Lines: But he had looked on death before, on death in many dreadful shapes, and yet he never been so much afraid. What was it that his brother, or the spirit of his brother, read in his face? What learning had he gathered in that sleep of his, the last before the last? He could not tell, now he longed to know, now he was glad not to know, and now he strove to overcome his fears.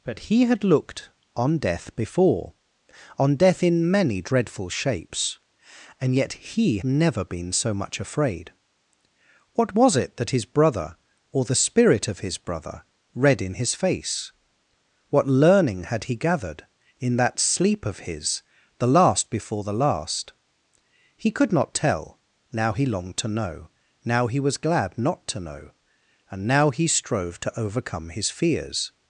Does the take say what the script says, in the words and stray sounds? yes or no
yes